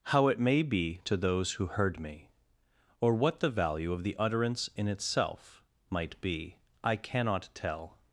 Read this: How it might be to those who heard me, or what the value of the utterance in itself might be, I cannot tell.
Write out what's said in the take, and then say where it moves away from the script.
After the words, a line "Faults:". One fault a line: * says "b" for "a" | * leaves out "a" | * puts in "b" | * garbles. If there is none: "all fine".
How it may be to those who heard me, or what the value of the utterance in itself might be, I cannot tell.
Faults:
* says "may" for "might"